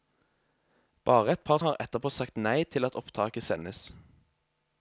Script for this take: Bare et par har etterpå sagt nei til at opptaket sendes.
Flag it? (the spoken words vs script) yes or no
no